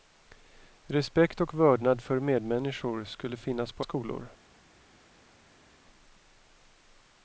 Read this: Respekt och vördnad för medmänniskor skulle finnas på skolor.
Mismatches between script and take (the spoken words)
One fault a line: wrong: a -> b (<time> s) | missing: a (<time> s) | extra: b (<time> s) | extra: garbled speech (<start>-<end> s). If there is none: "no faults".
no faults